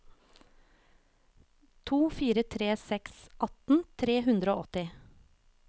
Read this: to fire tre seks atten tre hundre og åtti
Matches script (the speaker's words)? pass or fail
pass